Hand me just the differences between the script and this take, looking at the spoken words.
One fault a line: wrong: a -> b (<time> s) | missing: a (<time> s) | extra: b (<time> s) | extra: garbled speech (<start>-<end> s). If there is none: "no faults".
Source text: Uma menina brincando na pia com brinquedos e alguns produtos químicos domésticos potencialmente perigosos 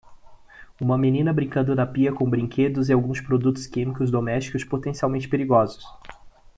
no faults